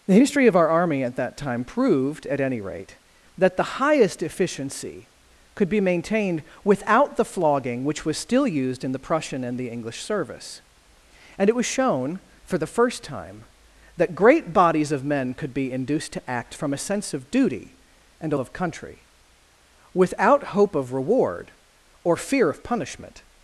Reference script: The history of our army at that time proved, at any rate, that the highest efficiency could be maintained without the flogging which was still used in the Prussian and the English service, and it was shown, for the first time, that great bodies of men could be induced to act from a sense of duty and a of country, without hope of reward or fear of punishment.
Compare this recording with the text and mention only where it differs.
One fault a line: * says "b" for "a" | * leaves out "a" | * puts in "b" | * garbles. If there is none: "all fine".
all fine